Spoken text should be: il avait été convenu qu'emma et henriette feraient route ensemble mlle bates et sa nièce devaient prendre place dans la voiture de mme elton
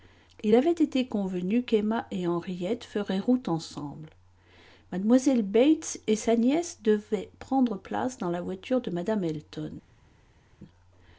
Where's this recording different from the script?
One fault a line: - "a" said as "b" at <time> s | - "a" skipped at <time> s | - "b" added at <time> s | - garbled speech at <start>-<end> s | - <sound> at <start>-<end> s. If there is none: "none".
none